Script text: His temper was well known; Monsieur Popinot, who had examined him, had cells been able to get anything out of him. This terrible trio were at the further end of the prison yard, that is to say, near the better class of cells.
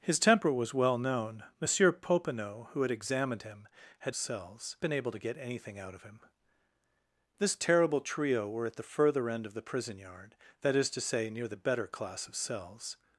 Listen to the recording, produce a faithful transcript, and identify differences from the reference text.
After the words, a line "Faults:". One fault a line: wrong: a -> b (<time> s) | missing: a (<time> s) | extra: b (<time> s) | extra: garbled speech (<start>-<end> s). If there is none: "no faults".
His temper was well known; Monsieur Popinot, who had examined him, had cells been able to get anything out of him. This terrible trio were at the further end of the prison yard, that is to say, near the better class of cells.
Faults:
no faults